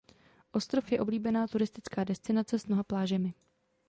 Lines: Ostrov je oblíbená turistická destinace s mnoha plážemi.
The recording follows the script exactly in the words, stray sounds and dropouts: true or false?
true